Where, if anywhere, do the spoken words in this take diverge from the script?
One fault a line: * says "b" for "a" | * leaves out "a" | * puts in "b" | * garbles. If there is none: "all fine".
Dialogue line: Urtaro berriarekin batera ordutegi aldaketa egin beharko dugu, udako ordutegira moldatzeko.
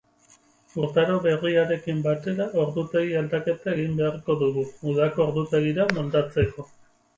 all fine